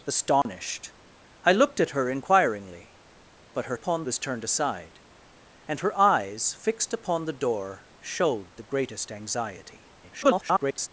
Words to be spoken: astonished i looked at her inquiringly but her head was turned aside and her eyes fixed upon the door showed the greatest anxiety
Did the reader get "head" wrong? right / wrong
wrong